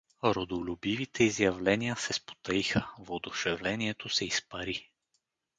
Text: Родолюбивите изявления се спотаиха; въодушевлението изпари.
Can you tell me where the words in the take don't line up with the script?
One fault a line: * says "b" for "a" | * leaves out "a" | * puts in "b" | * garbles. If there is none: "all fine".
* puts in "се"